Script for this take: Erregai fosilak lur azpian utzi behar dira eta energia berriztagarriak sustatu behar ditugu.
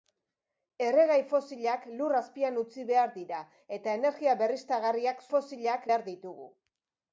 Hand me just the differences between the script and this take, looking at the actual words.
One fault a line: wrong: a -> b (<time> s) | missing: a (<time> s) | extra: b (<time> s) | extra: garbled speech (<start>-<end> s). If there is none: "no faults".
wrong: sustatu -> fosilak (5.3 s)